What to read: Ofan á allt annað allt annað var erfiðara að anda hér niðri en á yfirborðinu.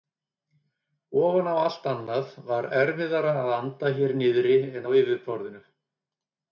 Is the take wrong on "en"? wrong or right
right